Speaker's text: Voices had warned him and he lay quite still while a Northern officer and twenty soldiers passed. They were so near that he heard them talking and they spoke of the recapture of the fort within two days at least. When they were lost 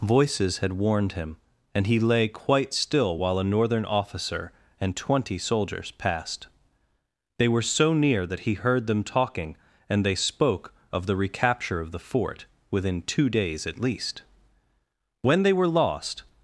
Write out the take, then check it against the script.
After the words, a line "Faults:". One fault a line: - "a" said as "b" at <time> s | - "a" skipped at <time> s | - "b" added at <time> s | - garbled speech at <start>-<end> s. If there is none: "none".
Voices had warned him and he lay quite still while a Northern officer and twenty soldiers passed. They were so near that he heard them talking and they spoke of the recapture of the fort within two days at least. When they were lost
Faults:
none